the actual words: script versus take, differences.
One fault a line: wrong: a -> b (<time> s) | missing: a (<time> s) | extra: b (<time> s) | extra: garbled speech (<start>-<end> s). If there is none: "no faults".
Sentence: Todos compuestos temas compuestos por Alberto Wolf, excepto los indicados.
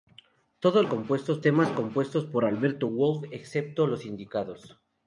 no faults